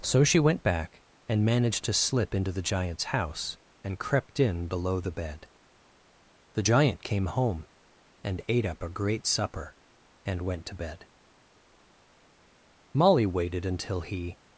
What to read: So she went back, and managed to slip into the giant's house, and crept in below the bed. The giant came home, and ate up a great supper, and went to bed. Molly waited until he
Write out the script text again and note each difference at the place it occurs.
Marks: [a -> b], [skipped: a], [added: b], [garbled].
So she went back, and managed to slip into the giant's house, and crept in below the bed. The giant came home, and ate up a great supper, and went to bed. Molly waited until he